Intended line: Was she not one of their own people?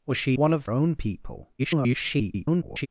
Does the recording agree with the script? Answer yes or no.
no